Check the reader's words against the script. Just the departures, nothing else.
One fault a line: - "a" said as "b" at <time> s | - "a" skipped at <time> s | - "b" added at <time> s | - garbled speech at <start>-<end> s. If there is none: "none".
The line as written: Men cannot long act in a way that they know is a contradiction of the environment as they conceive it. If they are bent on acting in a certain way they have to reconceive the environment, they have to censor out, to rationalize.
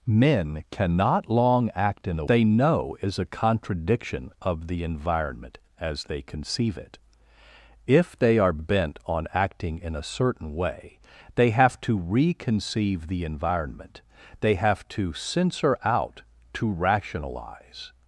- "way that" skipped at 2.2 s